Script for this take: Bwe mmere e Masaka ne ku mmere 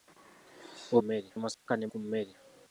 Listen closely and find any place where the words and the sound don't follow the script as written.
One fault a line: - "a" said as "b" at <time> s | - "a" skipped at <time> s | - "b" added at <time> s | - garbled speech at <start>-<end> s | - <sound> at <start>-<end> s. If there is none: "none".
- dropout at 1.5-1.7 s